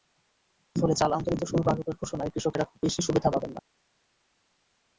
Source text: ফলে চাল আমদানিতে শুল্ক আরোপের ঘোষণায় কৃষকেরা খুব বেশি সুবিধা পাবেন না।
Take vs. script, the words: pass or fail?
pass